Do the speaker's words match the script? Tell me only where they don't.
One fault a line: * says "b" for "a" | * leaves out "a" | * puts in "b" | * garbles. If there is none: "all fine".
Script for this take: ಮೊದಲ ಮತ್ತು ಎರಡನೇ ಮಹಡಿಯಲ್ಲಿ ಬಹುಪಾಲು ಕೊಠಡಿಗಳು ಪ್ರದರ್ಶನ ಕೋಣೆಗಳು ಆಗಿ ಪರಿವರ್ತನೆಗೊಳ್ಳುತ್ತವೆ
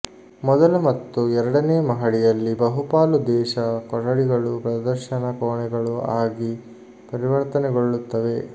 * puts in "ದೇಶ"